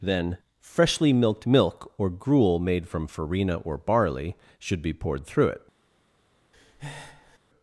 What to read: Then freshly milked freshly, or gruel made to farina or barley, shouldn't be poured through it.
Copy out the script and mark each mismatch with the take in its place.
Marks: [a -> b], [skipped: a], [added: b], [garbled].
Then freshly milked [freshly, -> milk] or gruel made [to -> from] farina or barley, [shouldn't -> should] be poured through it.